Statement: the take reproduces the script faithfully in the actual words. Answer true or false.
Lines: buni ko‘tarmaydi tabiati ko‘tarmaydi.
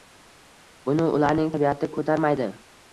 false